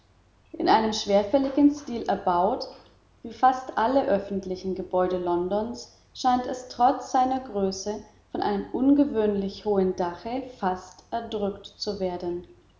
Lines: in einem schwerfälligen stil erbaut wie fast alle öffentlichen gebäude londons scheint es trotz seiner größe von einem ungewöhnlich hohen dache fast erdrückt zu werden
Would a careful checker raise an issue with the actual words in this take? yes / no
no